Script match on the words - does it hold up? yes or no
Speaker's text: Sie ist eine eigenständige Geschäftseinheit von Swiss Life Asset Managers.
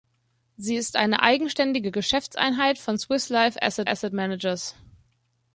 no